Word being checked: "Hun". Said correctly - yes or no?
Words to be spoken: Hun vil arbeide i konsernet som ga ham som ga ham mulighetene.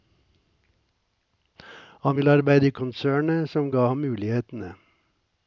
no